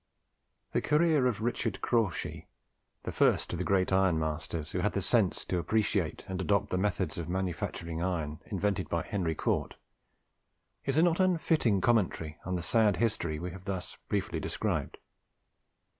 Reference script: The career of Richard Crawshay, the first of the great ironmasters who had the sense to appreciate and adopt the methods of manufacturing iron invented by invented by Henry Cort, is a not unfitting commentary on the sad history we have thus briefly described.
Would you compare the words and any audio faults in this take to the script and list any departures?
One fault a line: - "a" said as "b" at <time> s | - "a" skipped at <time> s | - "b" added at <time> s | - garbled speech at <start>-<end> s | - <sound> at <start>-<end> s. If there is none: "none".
- "invented by" skipped at 9.0 s